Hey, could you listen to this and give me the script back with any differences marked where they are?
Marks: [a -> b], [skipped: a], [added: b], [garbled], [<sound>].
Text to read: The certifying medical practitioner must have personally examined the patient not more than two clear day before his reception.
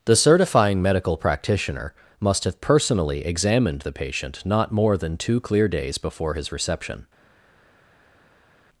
The certifying medical practitioner must have personally examined the patient not more than two clear [day -> days] before his reception.